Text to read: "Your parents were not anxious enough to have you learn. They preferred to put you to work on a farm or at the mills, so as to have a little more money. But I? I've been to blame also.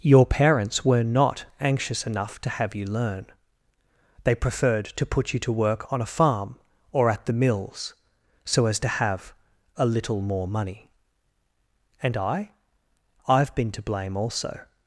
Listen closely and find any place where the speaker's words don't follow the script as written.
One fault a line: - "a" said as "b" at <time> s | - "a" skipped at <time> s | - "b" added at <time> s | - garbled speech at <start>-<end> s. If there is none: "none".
- "But" said as "And" at 12.0 s